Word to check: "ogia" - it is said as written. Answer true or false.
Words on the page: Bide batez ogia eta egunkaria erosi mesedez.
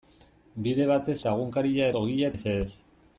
false